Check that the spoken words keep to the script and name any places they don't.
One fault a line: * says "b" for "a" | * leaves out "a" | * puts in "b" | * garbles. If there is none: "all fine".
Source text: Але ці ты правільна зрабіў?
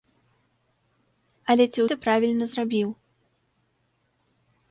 all fine